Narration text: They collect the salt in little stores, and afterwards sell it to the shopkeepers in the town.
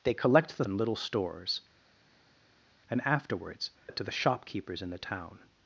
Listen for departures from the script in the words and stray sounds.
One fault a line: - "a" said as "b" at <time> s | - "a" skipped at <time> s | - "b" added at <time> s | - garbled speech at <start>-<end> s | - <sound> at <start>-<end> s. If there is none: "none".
- "salt" skipped at 0.7 s
- "sell" skipped at 3.7 s